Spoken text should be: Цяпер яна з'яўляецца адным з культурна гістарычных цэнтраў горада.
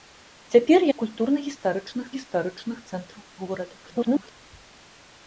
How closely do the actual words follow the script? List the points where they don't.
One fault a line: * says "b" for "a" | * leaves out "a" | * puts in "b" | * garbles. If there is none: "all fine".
* leaves out "яна з'яўляецца адным"
* puts in "гістарычных"
* garbles